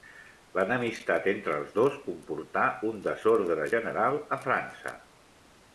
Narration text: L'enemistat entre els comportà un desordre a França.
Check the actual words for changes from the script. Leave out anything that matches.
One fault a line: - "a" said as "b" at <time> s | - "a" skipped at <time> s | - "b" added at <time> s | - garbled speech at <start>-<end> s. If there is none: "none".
- "dos" added at 1.8 s
- "general" added at 3.8 s